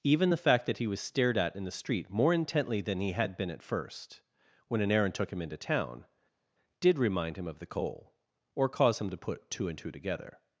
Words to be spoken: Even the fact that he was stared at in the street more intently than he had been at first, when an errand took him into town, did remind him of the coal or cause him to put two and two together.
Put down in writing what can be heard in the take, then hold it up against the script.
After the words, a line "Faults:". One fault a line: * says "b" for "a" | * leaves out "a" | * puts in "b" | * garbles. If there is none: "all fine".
Even the fact that he was stared at in the street more intently than he had been at first, when an errand took him into town, did remind him of the coal or cause him to put two and two together.
Faults:
all fine